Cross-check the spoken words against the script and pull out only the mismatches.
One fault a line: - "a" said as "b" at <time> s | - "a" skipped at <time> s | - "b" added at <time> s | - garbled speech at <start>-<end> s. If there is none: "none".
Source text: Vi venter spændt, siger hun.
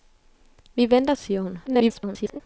- "spændt" skipped at 1.1 s
- garbled speech at 1.7-2.4 s